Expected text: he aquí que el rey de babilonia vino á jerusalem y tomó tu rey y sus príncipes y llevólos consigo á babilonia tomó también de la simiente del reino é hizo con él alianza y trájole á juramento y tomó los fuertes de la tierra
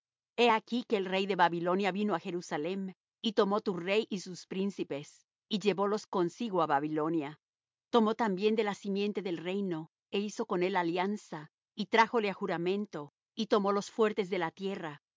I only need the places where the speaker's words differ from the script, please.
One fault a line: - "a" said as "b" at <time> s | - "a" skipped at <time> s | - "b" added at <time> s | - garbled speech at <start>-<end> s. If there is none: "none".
none